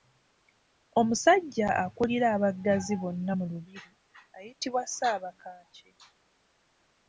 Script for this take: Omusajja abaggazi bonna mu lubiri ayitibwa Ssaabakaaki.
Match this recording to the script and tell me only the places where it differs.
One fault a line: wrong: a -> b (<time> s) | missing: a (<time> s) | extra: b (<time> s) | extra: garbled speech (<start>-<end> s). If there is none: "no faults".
extra: akulira (1.8 s)